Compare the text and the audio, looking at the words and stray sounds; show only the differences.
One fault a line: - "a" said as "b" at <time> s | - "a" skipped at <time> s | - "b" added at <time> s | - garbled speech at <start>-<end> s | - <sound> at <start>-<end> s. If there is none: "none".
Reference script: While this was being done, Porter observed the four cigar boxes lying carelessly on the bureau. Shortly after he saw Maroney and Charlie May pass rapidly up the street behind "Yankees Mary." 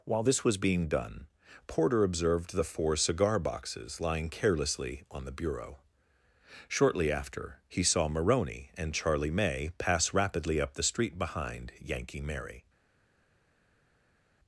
- "Yankees" said as "Yankee" at 11.8 s